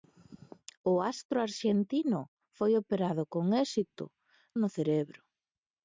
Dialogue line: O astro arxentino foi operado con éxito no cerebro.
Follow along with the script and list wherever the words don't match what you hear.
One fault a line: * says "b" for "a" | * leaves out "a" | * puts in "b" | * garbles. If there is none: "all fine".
all fine